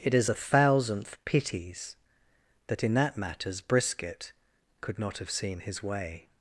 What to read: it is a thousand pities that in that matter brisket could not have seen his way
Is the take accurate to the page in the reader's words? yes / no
no